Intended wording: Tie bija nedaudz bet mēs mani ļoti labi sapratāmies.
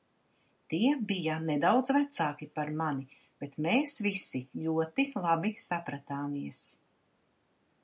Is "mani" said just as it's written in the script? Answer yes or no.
no